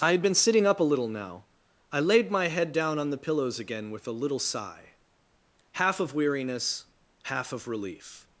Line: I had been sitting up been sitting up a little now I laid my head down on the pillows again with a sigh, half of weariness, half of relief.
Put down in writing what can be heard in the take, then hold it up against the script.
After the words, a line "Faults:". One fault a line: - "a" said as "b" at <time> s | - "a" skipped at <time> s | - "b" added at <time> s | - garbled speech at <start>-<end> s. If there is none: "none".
I had been sitting up a little now I laid my head down on the pillows again with a little sigh, half of weariness, half of relief.
Faults:
- "been sitting up" skipped at 0.8 s
- "little" added at 4.1 s